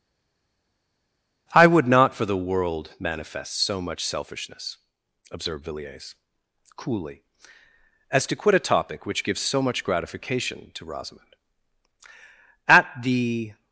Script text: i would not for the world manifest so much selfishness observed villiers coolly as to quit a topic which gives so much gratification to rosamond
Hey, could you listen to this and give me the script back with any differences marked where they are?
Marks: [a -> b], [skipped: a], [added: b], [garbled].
i would not for the world manifest so much selfishness observed villiers coolly as to quit a topic which gives so much gratification to rosamond [added: at the]